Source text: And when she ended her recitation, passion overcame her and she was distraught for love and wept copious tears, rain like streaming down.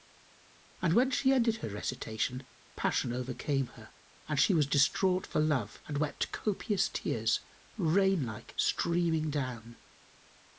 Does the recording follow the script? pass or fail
pass